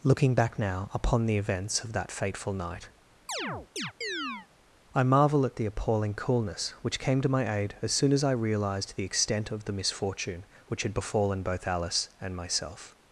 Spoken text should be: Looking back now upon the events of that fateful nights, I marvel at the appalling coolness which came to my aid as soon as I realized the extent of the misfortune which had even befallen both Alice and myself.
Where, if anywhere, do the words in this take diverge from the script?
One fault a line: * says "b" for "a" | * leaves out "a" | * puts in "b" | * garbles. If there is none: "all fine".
* says "night" for "nights"
* leaves out "even"